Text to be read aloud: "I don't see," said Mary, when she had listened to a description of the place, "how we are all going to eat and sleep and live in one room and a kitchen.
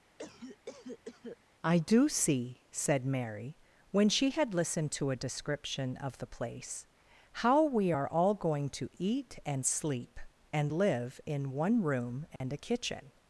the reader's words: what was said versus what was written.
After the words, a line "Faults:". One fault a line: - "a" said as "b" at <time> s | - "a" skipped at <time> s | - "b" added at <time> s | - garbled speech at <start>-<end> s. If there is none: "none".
"I do see," said Mary, when she had listened to a description of the place, "how we are all going to eat and sleep and live in one room and a kitchen.
Faults:
- "don't" said as "do" at 1.8 s